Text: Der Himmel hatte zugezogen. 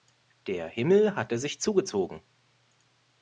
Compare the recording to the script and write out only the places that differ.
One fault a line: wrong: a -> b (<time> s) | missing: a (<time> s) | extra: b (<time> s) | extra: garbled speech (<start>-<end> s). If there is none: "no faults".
extra: sich (1.4 s)